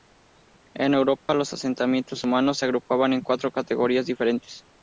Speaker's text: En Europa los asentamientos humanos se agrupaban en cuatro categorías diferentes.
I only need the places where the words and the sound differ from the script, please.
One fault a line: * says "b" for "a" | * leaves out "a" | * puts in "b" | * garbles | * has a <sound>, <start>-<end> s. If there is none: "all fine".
* has a dropout, 1.2-1.3 s